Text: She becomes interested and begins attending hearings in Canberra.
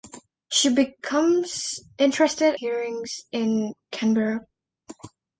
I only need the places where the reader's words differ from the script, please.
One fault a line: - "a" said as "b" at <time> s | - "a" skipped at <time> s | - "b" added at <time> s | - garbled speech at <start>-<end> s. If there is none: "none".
- "and begins attending" skipped at 2.5 s